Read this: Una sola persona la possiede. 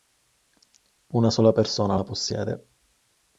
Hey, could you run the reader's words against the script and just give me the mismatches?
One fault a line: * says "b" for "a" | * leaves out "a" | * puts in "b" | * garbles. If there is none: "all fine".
all fine